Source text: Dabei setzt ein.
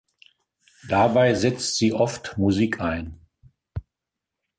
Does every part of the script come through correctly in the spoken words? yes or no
no